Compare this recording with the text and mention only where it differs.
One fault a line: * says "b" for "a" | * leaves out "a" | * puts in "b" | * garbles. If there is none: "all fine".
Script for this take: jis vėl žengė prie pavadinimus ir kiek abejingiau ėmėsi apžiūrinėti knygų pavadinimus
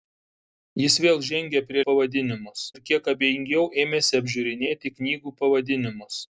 all fine